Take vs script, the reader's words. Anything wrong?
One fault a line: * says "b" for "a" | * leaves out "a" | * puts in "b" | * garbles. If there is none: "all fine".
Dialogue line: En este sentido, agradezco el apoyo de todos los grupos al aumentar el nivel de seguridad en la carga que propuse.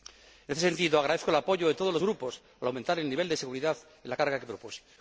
all fine